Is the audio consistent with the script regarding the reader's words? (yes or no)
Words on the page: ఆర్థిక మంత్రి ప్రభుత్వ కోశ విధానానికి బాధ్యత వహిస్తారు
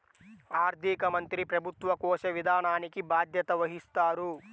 yes